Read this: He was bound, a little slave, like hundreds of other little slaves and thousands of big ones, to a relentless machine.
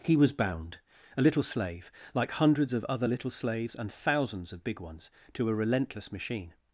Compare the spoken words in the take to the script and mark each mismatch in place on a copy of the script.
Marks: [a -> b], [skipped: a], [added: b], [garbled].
He was bound, a little slave, like hundreds of other little slaves and thousands of big ones, to a relentless machine.